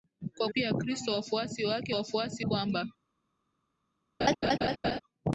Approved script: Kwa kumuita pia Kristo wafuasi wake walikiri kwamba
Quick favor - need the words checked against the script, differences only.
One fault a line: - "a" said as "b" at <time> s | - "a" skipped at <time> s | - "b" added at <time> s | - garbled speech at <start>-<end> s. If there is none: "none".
- "kumuita" skipped at 0.5 s
- "walikiri" said as "wafuasi" at 1.9 s